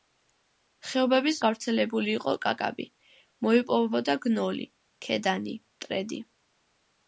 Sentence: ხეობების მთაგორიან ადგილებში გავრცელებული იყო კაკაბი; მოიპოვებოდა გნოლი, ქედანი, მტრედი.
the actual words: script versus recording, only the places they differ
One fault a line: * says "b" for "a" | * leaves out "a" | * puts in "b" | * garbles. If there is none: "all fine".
* leaves out "მთაგორიან ადგილებში"